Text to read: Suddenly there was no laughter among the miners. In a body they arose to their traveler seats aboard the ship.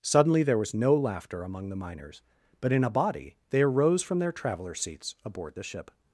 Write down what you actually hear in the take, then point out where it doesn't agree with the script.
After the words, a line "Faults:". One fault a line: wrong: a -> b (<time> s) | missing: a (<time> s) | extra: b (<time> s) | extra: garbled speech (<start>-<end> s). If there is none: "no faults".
Suddenly there was no laughter among the miners. But in a body they arose from their traveler seats aboard the ship.
Faults:
extra: But (2.6 s)
wrong: to -> from (4.0 s)